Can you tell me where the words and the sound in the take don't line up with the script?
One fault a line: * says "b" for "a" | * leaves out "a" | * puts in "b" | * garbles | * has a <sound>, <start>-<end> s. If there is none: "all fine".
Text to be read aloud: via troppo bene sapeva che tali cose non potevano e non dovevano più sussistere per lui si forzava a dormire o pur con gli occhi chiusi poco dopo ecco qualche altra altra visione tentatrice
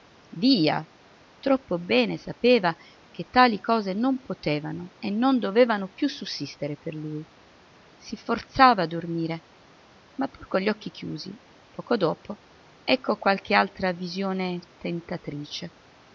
* says "ma" for "o"
* leaves out "altra"